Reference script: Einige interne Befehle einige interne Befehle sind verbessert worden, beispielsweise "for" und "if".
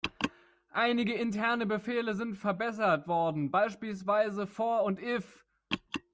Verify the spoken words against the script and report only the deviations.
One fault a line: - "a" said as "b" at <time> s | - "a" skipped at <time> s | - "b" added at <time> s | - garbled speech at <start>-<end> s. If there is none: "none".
- "einige interne Befehle" skipped at 2.1 s